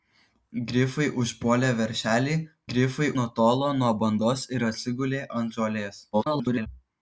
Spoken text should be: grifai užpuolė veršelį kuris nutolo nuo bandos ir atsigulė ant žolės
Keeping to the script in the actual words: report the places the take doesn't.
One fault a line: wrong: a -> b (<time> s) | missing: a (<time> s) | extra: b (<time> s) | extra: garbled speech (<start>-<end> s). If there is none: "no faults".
wrong: kuris -> grifai (2.7 s)
extra: garbled speech (6.1-6.7 s)